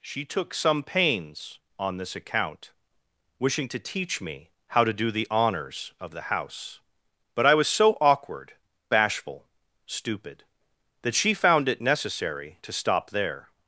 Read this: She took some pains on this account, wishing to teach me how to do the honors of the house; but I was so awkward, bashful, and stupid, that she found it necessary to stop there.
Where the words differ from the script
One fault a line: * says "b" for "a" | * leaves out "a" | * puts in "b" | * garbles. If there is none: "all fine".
* leaves out "and"